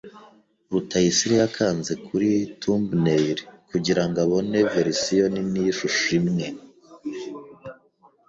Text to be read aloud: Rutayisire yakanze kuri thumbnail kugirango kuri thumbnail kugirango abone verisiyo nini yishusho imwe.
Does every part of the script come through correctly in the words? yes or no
no